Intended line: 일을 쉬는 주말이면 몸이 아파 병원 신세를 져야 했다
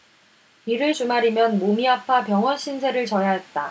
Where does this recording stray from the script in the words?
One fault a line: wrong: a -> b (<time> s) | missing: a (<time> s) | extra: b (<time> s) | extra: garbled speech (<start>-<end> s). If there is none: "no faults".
missing: 쉬는 (0.9 s)